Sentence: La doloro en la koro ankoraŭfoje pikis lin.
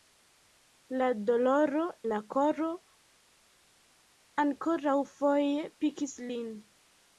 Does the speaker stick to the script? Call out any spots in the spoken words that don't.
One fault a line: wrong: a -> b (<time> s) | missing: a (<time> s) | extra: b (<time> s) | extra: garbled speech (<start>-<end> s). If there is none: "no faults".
missing: en (1.8 s)